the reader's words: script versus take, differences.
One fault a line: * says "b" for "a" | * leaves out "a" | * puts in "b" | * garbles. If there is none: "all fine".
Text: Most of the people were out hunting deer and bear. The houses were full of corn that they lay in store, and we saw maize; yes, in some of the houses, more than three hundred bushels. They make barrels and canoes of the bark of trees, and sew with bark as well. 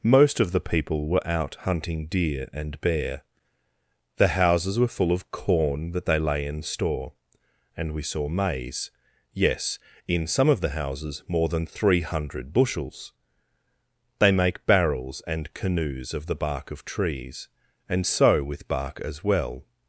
all fine